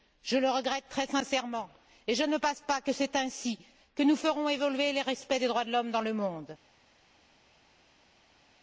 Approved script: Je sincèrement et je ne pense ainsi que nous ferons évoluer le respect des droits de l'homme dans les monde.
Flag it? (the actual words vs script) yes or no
yes